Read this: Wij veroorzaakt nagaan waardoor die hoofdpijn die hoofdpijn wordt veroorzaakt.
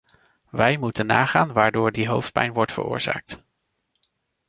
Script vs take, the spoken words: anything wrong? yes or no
yes